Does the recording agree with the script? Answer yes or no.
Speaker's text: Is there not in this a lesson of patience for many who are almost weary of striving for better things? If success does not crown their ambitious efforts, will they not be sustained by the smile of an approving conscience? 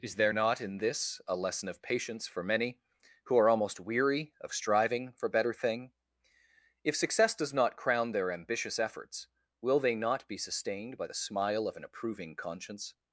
no